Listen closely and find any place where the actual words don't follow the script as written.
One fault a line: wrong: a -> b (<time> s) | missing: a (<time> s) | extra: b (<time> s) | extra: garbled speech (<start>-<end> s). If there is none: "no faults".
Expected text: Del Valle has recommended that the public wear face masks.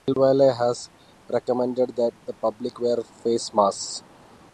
no faults